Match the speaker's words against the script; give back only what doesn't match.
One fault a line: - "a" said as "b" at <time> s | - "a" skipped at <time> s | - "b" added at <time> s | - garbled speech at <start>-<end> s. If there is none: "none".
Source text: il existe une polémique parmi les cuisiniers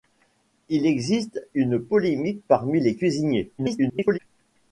- garbled speech at 3.6-4.2 s